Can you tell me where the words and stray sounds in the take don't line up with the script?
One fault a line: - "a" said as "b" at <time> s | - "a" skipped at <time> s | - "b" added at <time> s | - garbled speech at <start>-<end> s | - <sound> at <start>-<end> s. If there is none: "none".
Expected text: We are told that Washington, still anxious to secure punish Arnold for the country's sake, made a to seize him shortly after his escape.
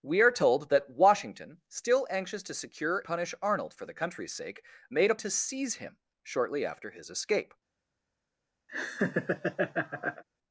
- laugh at 8.7-10.2 s